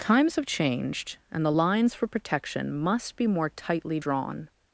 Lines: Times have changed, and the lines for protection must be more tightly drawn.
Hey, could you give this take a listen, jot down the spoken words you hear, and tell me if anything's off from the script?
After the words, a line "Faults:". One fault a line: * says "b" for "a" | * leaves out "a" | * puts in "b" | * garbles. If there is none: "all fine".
Times have changed, and the lines for protection must be more tightly drawn.
Faults:
all fine